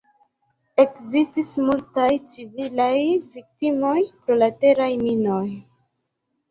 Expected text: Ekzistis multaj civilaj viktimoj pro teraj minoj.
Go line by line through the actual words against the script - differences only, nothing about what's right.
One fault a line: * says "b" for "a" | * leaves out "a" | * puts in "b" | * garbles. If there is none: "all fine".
* puts in "la"